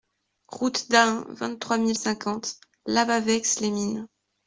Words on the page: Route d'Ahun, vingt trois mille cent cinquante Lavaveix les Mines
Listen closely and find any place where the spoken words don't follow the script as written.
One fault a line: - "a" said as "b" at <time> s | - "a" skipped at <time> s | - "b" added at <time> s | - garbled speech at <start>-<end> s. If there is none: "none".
- "cent" skipped at 2.0 s